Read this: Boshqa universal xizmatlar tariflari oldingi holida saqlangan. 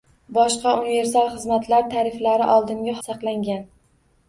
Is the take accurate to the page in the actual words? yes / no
no